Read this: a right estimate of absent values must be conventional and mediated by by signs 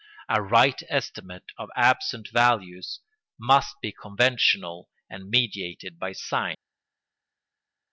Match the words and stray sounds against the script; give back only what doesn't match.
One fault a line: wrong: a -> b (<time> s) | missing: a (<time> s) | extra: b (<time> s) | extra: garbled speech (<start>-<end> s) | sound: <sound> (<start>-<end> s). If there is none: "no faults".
missing: by (6.1 s)